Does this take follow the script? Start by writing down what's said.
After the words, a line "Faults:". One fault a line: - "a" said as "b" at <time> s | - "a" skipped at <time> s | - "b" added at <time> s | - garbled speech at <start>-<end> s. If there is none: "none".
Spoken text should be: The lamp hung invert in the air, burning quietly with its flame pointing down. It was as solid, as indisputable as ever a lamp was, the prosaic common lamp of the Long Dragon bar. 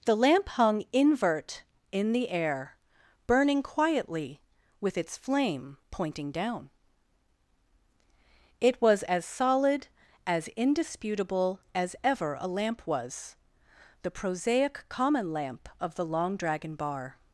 The lamp hung invert in the air, burning quietly with its flame pointing down. It was as solid, as indisputable as ever a lamp was, the prosaic common lamp of the Long Dragon bar.
Faults:
none